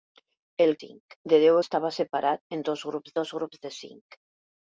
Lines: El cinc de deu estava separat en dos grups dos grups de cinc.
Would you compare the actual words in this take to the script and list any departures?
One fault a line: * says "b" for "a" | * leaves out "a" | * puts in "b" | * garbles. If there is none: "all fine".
all fine